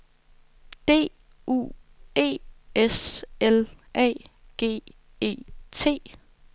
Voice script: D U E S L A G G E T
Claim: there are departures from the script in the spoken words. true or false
true